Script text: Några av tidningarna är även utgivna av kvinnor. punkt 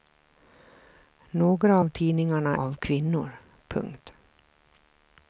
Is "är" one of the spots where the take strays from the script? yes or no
yes